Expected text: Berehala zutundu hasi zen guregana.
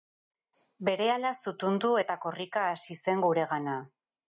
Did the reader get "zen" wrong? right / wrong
right